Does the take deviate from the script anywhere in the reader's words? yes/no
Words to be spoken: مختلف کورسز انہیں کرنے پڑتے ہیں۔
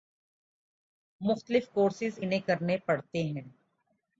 no